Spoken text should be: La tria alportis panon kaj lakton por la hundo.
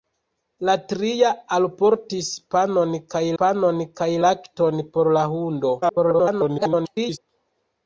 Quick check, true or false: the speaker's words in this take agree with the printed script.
false